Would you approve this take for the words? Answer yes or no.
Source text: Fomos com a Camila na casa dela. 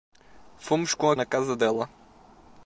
no